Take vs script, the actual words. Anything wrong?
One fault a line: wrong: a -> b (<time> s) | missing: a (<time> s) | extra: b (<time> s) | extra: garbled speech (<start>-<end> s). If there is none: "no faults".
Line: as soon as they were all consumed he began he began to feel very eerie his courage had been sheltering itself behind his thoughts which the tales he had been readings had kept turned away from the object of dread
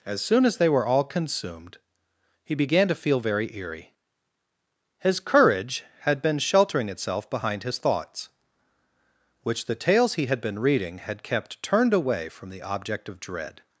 missing: he began (2.9 s)
wrong: readings -> reading (10.6 s)